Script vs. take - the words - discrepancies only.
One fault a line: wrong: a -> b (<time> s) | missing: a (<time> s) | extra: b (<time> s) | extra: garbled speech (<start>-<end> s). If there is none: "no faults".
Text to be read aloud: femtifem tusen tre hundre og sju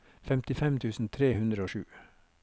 no faults